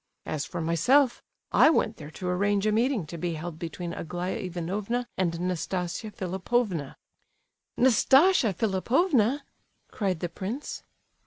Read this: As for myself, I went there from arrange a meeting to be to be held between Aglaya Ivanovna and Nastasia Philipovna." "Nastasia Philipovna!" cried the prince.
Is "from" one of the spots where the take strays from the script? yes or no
yes